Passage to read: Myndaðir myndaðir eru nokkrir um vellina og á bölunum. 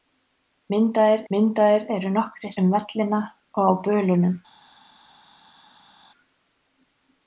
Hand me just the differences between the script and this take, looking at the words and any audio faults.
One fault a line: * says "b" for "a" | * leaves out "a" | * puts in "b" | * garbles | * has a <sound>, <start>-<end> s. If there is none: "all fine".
all fine